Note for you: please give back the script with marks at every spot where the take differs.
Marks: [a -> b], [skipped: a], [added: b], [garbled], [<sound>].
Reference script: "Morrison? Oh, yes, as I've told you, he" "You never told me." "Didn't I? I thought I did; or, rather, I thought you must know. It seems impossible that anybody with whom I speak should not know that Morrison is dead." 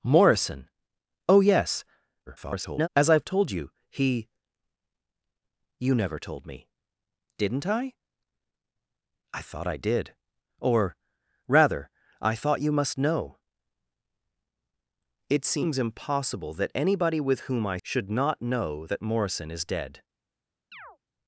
"Morrison? Oh, yes, [garbled] as I've told you, he" "You never told me." "Didn't I? I thought I did; or, rather, I thought you must know. It seems impossible that anybody with whom I [skipped: speak] should not know that Morrison is dead." [chirp]